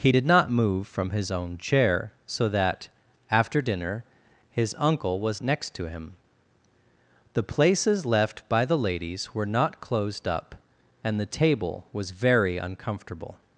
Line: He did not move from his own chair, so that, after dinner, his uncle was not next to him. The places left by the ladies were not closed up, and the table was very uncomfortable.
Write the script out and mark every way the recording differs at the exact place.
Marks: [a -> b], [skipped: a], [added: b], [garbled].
He did not move from his own chair, so that, after dinner, his uncle was [skipped: not] next to him. The places left by the ladies were not closed up, and the table was very uncomfortable.